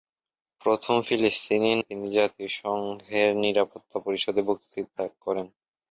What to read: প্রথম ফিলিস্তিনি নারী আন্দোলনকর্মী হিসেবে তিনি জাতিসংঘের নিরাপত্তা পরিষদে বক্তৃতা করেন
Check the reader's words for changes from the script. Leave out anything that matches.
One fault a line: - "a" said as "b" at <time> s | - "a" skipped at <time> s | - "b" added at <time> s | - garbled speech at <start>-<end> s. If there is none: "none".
- "নারী আন্দোলনকর্মী হিসেবে" skipped at 1.7 s